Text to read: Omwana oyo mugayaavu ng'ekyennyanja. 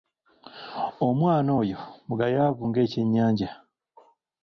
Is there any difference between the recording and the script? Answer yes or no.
no